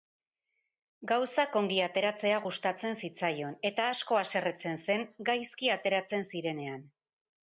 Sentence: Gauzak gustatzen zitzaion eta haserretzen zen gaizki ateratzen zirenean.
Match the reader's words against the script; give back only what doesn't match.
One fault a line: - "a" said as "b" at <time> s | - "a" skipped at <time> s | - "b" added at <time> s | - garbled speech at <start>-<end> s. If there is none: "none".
- "ongi ateratzea" added at 1.6 s
- "asko" added at 3.9 s